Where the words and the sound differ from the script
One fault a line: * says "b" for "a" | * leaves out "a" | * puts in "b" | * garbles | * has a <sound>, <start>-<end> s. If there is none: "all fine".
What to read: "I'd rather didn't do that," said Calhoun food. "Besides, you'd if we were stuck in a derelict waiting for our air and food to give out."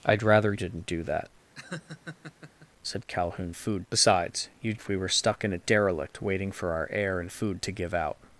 * has a laugh, 1.5-2.7 s